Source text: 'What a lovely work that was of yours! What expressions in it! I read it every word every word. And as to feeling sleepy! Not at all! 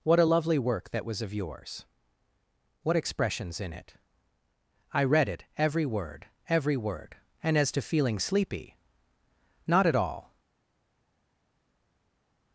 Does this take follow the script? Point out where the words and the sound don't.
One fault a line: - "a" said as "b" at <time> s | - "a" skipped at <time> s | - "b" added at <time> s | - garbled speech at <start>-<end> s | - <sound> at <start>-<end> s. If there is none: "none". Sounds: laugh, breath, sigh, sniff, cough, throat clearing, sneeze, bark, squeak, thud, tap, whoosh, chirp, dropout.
none